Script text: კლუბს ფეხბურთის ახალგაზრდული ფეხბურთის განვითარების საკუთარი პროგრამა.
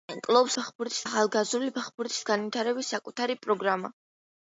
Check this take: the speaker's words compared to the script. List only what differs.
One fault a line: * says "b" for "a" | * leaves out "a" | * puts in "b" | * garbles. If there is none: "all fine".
all fine